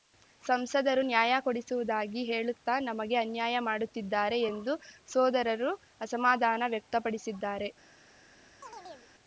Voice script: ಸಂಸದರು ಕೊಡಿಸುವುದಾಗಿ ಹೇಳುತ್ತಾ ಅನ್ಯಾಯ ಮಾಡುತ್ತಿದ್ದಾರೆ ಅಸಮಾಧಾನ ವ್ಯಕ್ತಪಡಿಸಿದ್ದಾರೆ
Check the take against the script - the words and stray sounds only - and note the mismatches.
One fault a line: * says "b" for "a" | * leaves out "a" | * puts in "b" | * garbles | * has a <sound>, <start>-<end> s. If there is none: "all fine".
* puts in "ನ್ಯಾಯ"
* puts in "ನಮಗೆ"
* puts in "ಎಂದು ಸೋದರರು"
* has a chirp, 8.6-9.1 s